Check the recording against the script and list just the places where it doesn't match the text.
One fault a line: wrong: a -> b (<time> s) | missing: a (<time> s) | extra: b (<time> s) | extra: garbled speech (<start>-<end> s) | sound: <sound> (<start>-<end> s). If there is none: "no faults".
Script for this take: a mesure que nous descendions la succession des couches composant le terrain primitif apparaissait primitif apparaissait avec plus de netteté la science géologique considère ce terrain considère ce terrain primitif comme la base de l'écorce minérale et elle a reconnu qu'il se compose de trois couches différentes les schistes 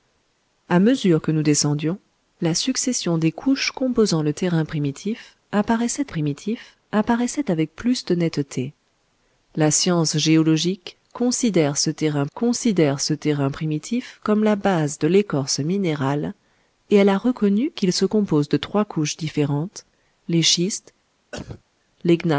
sound: cough (21.3-21.6 s)